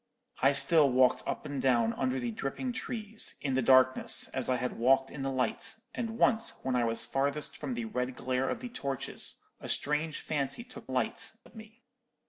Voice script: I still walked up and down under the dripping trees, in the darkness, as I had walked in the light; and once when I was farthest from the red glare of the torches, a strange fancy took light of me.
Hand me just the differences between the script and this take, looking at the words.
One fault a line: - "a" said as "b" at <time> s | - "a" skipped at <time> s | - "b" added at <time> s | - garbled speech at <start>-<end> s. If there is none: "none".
none